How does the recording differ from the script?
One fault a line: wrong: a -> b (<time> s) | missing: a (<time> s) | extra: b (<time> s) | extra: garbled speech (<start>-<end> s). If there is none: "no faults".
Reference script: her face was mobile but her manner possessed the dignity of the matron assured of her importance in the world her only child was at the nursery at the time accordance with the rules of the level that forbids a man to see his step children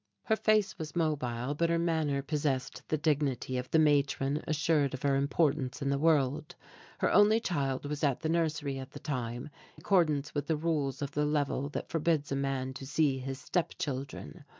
no faults